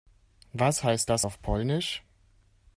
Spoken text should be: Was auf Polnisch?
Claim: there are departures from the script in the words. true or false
true